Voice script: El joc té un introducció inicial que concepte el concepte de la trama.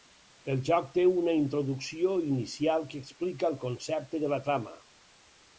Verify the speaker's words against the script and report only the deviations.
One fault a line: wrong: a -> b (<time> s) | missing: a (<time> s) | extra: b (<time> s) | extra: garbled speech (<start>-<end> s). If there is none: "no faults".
wrong: un -> una (1.1 s)
wrong: concepte -> explica (3.0 s)